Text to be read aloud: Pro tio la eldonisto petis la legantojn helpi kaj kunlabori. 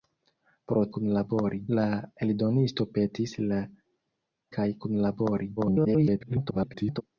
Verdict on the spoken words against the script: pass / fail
fail